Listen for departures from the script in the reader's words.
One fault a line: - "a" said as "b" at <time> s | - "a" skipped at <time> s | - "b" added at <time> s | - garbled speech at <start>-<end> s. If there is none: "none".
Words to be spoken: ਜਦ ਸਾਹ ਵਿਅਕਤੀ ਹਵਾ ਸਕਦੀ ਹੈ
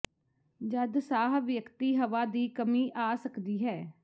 - "ਦੀ ਕਮੀ ਆ" added at 2.3 s